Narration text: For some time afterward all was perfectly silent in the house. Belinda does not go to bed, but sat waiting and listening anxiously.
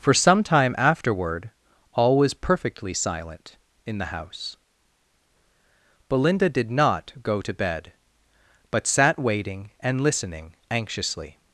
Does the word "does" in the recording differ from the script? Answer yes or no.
yes